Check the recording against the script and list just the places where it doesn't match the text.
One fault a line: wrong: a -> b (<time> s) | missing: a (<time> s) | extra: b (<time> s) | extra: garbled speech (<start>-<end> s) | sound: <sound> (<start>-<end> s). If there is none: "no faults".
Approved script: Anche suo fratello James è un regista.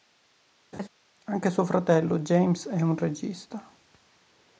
sound: laugh (0.7-0.9 s)